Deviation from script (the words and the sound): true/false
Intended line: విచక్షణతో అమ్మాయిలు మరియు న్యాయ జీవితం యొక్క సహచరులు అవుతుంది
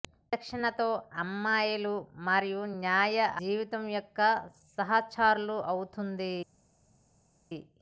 false